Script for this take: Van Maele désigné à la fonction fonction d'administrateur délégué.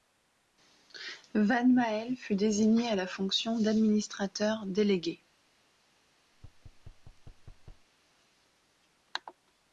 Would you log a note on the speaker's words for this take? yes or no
yes